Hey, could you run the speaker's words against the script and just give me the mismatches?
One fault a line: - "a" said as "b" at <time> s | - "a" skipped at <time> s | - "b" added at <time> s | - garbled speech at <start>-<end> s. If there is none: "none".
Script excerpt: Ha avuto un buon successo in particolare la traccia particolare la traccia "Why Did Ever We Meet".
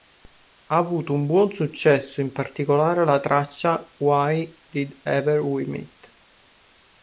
- "particolare la traccia" skipped at 3.9 s